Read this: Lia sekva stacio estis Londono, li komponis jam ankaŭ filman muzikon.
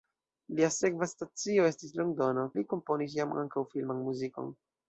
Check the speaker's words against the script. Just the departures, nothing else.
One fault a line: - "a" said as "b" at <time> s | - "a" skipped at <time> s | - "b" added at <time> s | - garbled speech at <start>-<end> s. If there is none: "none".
none